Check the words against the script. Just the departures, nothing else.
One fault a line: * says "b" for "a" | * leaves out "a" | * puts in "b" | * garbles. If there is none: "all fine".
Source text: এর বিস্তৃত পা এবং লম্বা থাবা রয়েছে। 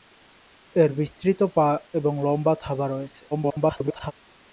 * garbles